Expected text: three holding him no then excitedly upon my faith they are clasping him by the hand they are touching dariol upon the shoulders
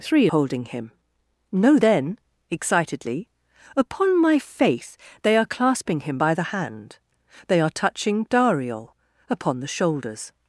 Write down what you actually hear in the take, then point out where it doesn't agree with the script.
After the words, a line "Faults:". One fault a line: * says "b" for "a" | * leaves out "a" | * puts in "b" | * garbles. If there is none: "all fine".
three holding him no then excitedly upon my faith they are clasping him by the hand they are touching dariol upon the shoulders
Faults:
all fine